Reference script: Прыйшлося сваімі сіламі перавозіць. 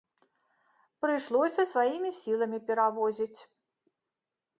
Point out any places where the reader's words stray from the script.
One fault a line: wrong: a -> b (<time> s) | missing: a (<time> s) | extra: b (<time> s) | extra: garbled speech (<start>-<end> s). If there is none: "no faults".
no faults